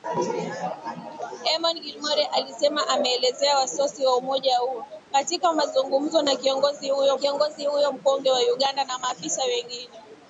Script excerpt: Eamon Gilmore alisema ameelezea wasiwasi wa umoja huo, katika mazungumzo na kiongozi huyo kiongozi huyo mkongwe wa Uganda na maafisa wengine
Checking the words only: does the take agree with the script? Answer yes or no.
yes